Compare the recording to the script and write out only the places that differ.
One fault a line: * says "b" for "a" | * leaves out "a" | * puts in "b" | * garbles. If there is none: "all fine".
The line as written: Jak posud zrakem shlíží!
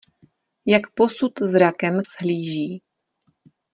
all fine